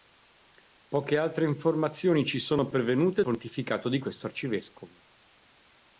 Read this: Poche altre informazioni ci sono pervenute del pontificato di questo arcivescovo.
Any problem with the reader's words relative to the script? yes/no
yes